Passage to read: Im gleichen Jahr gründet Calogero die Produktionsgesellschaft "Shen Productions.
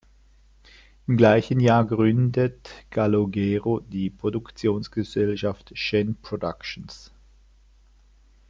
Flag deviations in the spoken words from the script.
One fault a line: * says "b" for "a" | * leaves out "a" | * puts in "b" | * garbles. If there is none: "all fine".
all fine